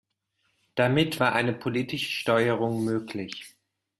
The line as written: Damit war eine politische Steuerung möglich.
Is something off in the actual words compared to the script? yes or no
no